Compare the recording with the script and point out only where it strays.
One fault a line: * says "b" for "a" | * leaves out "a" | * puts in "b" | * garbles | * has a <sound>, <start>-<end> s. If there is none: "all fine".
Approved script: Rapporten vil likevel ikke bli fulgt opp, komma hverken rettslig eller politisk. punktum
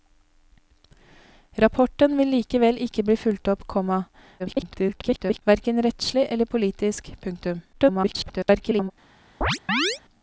* garbles
* garbles
* has a chirp, 9.4-10.0 s